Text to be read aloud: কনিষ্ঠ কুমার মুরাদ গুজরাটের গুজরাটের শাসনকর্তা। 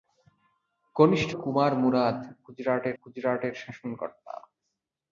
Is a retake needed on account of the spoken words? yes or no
no